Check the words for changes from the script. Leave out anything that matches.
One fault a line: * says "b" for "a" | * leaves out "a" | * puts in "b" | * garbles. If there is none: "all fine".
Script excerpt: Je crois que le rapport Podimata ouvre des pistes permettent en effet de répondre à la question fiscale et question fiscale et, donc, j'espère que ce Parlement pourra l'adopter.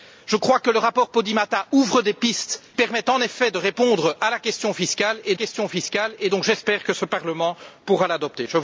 all fine